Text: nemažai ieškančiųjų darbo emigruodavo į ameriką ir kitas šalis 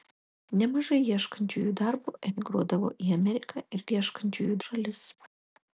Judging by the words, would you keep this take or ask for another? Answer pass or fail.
fail